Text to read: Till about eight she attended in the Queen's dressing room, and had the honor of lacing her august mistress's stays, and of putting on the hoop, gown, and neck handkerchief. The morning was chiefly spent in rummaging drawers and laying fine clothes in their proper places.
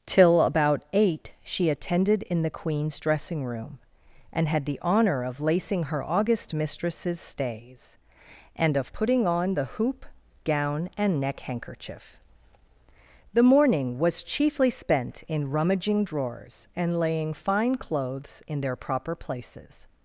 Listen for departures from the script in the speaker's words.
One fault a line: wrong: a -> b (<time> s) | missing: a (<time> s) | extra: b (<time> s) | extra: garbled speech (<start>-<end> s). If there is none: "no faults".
no faults